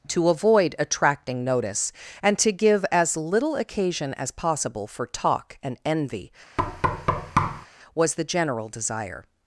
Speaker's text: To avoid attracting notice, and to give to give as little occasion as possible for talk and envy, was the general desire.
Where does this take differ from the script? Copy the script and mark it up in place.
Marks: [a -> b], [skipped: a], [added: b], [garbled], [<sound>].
To avoid attracting notice, and to give [skipped: to give] as little occasion as possible for talk and envy, [thud] was the general desire.